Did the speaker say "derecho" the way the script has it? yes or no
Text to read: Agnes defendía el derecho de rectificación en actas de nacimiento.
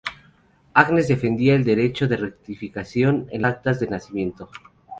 yes